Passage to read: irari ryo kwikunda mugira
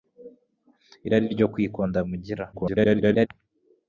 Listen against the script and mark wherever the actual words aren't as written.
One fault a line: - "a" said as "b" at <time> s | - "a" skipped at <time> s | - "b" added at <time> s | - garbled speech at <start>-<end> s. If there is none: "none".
- garbled speech at 2.5-3.3 s